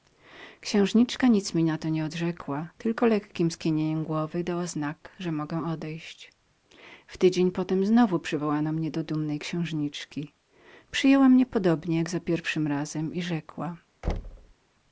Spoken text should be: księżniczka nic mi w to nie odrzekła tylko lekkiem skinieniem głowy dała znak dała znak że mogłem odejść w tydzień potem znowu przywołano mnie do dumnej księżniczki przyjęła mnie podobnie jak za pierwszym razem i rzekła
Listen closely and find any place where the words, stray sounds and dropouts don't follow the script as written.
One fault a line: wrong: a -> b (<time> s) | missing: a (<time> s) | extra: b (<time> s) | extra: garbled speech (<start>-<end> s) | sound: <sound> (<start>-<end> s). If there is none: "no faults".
wrong: w -> na (1.6 s)
missing: dała znak (5.2 s)
sound: thud (14.0-14.5 s)